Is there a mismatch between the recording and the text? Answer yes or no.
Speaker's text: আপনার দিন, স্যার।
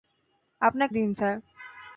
no